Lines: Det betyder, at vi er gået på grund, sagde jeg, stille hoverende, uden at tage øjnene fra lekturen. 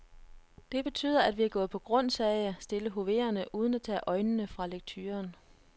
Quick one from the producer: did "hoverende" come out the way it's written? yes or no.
yes